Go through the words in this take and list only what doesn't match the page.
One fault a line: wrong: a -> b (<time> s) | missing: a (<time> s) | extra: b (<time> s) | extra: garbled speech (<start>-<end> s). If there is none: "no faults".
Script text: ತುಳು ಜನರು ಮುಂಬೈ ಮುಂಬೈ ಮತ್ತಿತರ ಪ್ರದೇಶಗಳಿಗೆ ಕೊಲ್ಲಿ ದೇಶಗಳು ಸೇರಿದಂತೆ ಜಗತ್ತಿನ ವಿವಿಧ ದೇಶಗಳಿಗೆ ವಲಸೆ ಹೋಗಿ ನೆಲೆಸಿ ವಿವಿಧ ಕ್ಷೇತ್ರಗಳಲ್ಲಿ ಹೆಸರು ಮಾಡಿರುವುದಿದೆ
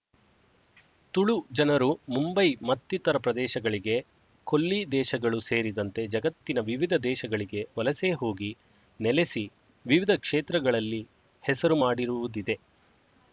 missing: ಮುಂಬೈ (2.4 s)